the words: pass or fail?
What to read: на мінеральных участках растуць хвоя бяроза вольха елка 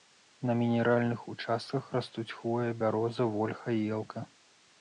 pass